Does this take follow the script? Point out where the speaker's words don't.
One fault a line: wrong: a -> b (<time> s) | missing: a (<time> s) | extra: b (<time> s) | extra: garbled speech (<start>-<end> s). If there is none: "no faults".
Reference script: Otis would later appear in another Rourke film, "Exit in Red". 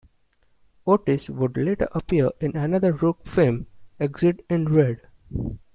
no faults